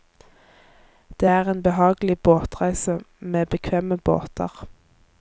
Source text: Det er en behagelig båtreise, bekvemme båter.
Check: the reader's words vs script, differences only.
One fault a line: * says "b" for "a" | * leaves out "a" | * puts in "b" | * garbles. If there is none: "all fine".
* puts in "med"